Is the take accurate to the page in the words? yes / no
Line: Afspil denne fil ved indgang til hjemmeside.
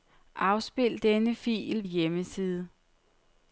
no